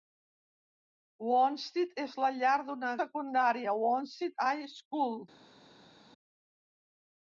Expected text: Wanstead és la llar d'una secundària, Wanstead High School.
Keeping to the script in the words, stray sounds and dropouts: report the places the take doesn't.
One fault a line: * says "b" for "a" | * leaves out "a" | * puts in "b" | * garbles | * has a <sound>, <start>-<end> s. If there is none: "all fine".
all fine